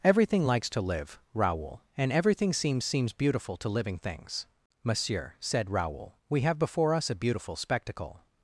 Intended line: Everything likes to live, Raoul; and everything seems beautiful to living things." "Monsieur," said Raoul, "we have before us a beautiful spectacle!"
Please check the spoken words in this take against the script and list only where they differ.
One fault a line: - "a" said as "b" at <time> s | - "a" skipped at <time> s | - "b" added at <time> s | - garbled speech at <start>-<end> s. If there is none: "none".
- "seems" added at 2.8 s